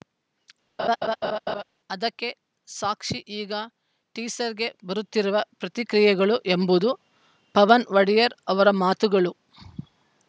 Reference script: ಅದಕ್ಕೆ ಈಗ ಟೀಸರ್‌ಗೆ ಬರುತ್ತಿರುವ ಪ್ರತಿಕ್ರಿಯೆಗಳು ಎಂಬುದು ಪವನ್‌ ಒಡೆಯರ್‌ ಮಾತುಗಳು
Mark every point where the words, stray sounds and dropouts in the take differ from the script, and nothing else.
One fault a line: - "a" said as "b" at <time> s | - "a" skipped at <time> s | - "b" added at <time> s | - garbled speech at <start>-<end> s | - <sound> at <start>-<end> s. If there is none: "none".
- laugh at 0.8-1.6 s
- "ಸಾಕ್ಷಿ" added at 2.7 s
- "ಅವರ" added at 8.5 s